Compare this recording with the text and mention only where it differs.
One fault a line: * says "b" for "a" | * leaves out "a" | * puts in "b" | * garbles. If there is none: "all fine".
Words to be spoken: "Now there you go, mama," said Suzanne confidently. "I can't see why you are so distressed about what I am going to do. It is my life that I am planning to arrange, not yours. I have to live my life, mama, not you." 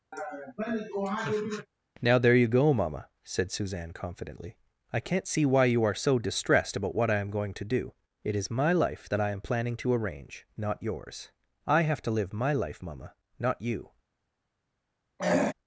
all fine